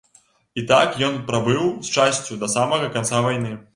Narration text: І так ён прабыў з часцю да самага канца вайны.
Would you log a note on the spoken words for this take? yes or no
no